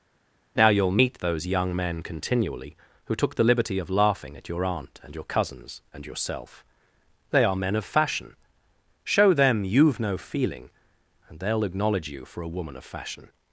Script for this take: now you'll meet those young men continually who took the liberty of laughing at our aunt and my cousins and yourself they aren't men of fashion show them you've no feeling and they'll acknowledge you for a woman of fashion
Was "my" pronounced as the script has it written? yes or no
no